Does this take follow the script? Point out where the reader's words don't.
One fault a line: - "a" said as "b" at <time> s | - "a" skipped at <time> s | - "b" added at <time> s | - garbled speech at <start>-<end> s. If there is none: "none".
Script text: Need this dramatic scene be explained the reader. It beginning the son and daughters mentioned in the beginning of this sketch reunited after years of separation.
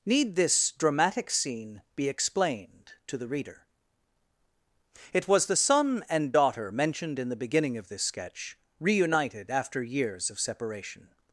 - "to" added at 3.0 s
- "beginning" said as "was" at 5.3 s
- "daughters" said as "daughter" at 6.3 s